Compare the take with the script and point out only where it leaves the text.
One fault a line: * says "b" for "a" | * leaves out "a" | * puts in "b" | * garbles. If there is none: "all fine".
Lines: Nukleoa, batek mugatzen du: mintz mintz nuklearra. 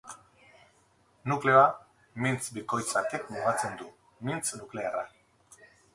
* puts in "mintz bikoitz"
* leaves out "mintz"